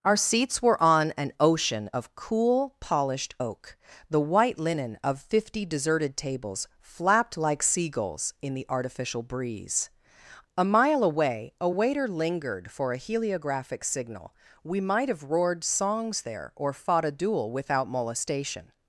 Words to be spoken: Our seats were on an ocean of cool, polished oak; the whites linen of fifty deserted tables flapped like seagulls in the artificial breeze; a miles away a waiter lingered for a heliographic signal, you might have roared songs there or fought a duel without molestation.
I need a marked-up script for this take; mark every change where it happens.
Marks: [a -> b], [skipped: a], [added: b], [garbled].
Our seats were on an ocean of cool, polished oak; the [whites -> white] linen of fifty deserted tables flapped like seagulls in the artificial breeze; a [miles -> mile] away a waiter lingered for a heliographic signal, [you -> we] might have roared songs there or fought a duel without molestation.